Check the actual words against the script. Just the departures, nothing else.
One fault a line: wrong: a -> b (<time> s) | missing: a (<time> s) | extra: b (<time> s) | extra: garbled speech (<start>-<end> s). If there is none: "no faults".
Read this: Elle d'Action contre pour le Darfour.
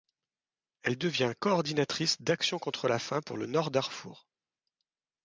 extra: devient coordinatrice (1.0 s)
extra: la faim (2.9 s)
extra: Nord (3.5 s)